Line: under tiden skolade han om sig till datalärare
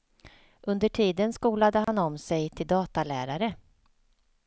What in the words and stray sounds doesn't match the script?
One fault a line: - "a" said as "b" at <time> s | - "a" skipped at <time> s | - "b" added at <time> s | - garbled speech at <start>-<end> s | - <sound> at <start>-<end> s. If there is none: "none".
- dropout at 1.8-1.9 s